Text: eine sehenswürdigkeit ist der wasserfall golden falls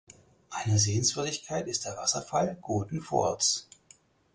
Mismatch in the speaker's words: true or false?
false